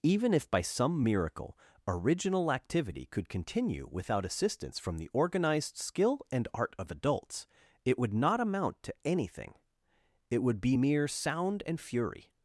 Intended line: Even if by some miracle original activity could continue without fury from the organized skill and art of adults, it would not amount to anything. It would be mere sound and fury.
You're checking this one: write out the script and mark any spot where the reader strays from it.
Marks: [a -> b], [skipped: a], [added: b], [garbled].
Even if by some miracle original activity could continue without [fury -> assistance] from the organized skill and art of adults, it would not amount to anything. It would be mere sound and fury.